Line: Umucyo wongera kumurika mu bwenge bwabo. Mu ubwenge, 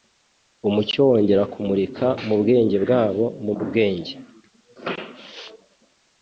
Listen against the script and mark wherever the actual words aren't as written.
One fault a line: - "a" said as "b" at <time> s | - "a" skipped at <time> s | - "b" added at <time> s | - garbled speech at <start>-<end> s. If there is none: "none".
none